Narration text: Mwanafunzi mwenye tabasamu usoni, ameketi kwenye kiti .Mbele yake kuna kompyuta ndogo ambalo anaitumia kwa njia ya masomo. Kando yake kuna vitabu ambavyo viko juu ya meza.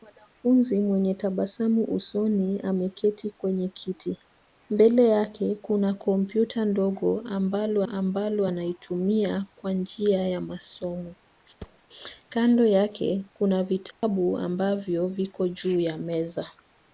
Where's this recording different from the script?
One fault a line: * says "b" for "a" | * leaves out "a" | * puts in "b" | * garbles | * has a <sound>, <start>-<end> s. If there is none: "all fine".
* puts in "ambalo"
* has a thud, 11.6-11.8 s
* has a dropout, 13.9-14.0 s